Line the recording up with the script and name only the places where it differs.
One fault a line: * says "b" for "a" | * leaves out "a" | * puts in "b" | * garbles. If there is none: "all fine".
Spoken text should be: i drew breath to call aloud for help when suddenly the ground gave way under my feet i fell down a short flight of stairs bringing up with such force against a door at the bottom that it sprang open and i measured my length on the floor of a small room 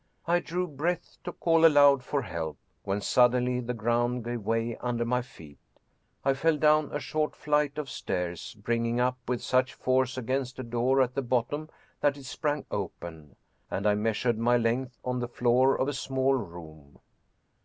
all fine